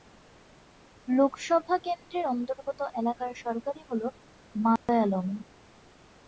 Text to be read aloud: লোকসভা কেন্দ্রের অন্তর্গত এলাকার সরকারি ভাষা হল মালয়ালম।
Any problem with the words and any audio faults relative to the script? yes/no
yes